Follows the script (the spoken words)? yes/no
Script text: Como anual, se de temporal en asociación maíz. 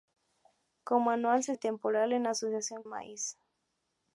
yes